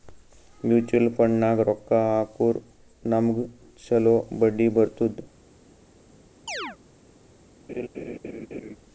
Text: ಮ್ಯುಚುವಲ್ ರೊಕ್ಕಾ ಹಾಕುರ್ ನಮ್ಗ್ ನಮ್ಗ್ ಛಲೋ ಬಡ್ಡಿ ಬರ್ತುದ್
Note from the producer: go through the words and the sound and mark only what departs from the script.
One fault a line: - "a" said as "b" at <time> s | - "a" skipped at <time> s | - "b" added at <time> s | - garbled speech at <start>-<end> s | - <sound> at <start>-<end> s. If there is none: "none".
- "ಫಂಡ್ನಾಗ್" added at 1.1 s
- "ನಮ್ಗ್" skipped at 3.4 s
- chirp at 6.5-6.8 s
- laugh at 7.7-8.8 s